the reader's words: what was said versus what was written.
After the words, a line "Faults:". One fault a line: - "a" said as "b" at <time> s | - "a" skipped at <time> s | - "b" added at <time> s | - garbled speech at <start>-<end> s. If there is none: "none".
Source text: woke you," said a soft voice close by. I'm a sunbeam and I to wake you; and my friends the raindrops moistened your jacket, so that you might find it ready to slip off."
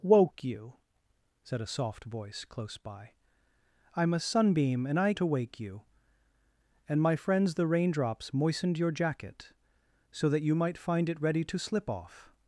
woke you," said a soft voice close by. I'm a sunbeam and I to wake you; and my friends the raindrops moistened your jacket, so that you might find it ready to slip off."
Faults:
none